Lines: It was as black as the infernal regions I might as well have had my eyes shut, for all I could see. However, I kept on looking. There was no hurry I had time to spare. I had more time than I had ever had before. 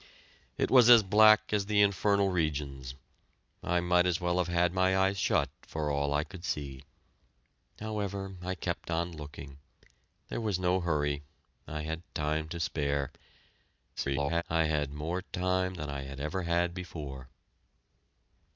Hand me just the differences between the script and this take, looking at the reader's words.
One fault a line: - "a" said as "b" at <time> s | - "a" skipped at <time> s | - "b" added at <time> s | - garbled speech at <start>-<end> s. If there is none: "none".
- garbled speech at 14.0-14.4 s